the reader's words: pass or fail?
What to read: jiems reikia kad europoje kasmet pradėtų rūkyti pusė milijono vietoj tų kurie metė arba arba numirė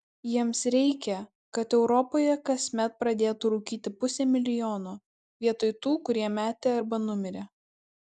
fail